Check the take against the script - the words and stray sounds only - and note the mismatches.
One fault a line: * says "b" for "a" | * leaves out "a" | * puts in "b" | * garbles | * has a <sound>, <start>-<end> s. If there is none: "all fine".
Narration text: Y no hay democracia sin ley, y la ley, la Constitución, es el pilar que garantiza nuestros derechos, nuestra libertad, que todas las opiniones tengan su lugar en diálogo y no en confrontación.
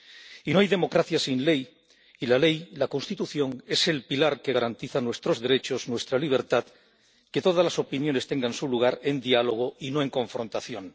all fine